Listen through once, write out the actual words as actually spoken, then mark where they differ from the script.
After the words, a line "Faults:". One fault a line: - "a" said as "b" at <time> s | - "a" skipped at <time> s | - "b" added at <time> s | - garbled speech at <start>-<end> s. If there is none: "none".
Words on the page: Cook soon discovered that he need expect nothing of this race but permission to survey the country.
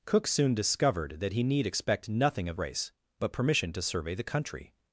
Cook soon discovered that he need expect nothing of race but permission to survey the country.
Faults:
- "this" skipped at 2.6 s